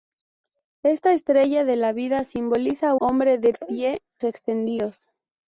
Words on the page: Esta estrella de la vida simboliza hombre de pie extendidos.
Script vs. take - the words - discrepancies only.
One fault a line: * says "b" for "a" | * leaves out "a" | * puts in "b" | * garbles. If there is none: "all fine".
all fine